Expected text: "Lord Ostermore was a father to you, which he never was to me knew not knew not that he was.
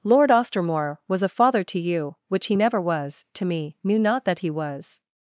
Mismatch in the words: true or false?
true